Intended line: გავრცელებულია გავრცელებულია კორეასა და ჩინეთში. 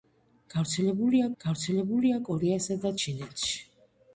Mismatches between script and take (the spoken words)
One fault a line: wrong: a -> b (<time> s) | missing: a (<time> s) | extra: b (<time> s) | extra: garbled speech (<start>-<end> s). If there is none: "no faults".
no faults